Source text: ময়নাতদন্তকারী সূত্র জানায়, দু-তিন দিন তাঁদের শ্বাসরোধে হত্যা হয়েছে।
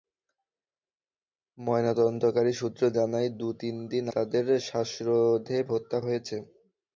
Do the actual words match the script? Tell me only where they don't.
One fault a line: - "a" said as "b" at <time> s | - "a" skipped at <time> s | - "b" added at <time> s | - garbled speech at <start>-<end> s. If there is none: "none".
none